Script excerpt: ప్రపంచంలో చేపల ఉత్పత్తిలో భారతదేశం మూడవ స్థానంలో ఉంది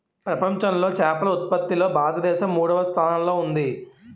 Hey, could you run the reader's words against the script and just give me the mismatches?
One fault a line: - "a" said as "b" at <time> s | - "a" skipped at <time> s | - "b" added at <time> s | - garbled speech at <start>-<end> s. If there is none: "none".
none